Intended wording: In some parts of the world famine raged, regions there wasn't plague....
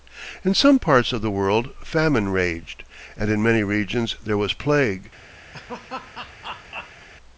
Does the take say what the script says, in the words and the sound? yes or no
no